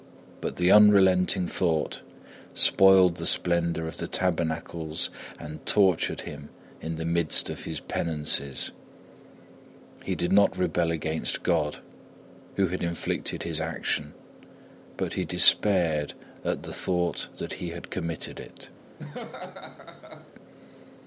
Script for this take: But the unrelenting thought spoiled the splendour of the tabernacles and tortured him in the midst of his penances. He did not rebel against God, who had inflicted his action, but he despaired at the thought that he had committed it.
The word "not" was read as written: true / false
true